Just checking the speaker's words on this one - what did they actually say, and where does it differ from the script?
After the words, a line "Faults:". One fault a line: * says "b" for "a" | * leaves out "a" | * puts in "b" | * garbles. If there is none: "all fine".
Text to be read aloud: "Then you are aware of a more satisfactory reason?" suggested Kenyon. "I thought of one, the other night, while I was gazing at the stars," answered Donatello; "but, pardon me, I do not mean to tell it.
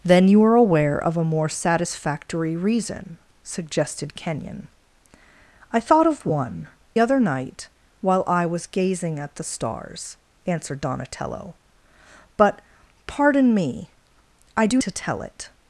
"Then you are aware of a more satisfactory reason?" suggested Kenyon. "I thought of one, other night, while I was gazing at the stars," answered Donatello; "but, pardon me, I do to tell it.
Faults:
* leaves out "the"
* leaves out "not mean"